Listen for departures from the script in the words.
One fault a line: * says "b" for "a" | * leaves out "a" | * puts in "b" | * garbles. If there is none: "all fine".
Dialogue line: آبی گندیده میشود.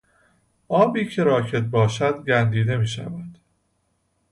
* puts in "که راکد باشد"